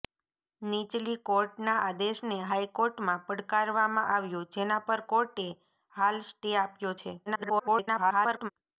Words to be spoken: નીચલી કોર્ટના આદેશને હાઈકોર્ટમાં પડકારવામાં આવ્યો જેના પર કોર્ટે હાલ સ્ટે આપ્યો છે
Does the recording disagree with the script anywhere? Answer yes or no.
yes